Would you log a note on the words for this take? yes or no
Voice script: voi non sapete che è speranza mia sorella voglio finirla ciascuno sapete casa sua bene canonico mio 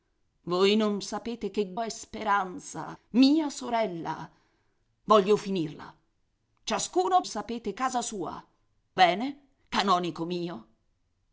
no